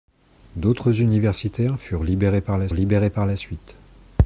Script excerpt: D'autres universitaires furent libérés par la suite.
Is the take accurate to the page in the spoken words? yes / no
no